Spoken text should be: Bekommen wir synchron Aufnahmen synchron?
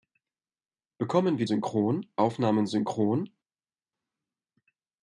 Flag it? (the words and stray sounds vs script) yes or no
no